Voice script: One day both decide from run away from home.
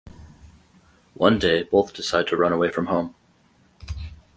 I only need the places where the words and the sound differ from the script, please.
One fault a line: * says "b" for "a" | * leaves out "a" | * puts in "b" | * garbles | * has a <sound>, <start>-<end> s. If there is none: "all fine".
* says "to" for "from"